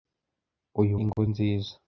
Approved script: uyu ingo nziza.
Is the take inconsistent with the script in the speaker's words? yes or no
no